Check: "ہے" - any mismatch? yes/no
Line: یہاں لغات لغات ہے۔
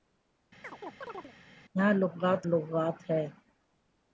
no